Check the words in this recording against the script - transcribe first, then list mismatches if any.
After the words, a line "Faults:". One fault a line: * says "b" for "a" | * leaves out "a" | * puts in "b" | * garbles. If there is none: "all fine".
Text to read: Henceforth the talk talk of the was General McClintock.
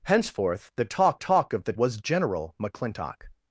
Henceforth the talk talk of the was General McClintock.
Faults:
all fine